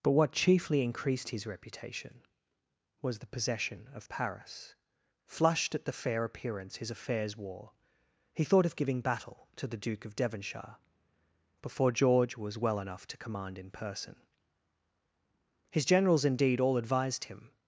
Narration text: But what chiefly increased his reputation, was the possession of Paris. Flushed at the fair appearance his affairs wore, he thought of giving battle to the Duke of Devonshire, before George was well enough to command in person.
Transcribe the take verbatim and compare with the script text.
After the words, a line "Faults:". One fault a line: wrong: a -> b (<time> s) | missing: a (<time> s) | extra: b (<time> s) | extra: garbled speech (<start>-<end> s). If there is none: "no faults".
But what chiefly increased his reputation, was the possession of Paris. Flushed at the fair appearance his affairs wore, he thought of giving battle to the Duke of Devonshire, before George was well enough to command in person. His generals indeed all advised him
Faults:
extra: His generals indeed all advised him (15.7 s)